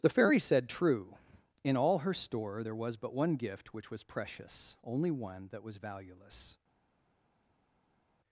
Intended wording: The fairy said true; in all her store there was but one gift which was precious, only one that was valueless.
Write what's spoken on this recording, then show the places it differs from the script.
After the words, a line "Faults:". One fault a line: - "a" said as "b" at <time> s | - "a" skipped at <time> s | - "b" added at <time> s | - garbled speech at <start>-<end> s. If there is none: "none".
The fairy said true; in all her store there was but one gift which was precious, only one that was valueless.
Faults:
none